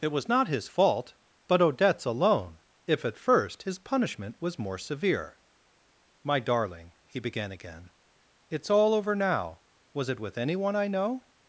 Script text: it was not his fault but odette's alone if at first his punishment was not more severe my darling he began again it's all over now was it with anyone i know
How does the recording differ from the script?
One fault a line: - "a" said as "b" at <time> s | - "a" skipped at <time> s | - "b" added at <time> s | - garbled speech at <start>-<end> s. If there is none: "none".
- "not" skipped at 4.6 s